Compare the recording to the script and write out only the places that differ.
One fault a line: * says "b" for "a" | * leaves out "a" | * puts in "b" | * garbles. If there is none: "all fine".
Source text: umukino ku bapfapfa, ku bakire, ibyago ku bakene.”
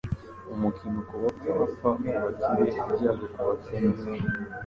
all fine